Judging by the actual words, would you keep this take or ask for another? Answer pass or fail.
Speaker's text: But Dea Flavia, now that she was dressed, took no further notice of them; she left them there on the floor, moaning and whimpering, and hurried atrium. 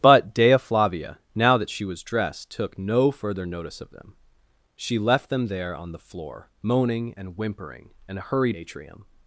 pass